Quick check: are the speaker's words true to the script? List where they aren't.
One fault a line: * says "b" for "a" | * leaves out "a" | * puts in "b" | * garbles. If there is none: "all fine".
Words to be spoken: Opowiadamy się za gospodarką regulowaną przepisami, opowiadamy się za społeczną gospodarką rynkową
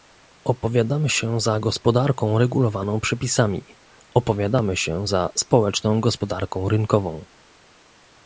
all fine